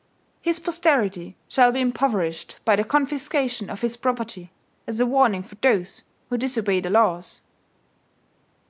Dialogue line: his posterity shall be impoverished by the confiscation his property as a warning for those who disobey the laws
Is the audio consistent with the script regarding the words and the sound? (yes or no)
no